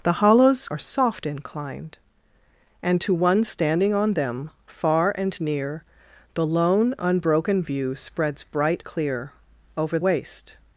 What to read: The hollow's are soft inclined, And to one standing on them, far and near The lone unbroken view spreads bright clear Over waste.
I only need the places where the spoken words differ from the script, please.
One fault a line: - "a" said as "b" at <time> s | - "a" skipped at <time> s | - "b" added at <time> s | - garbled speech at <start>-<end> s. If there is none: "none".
none